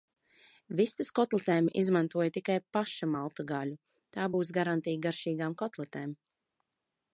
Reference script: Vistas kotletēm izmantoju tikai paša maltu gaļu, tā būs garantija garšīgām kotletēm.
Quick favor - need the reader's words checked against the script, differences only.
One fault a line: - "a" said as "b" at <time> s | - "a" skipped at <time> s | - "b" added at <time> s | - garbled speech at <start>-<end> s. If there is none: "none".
none